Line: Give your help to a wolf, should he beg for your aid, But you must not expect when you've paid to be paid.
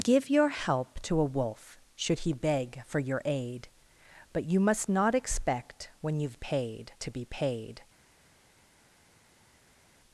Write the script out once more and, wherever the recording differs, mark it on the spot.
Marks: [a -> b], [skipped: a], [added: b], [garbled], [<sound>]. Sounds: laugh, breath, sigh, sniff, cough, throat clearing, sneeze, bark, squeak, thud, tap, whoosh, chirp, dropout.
Give your help to a wolf, should he beg for your aid, But you must not expect when you've paid to be paid.